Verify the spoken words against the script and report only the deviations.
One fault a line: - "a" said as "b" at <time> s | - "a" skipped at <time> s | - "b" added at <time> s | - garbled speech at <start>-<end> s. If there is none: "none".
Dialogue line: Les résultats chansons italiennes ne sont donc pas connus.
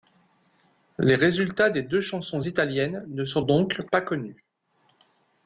- "des deux" added at 1.7 s